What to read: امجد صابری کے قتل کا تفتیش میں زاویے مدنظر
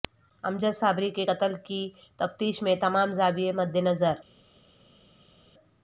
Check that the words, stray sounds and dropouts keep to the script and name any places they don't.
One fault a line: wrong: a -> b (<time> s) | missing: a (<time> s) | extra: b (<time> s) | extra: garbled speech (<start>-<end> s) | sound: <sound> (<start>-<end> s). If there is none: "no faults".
wrong: کا -> کی (1.6 s)
extra: تمام (2.8 s)